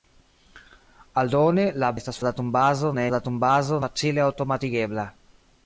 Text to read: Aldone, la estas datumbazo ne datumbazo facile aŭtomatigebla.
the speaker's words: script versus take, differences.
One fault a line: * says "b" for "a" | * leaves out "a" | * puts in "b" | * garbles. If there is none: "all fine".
all fine